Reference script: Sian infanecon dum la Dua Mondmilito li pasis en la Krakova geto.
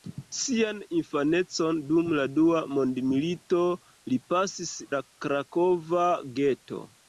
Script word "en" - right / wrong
wrong